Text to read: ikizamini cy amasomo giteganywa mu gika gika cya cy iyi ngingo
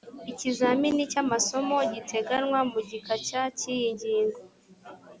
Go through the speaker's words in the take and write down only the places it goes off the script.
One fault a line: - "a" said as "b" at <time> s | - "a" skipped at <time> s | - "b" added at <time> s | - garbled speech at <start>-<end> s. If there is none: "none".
- "gika" skipped at 3.1 s